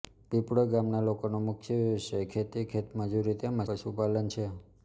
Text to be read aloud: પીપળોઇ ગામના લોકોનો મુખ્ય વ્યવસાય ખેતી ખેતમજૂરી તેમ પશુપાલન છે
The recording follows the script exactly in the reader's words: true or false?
true